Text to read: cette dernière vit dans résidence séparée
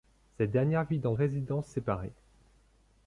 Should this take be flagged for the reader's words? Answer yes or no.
no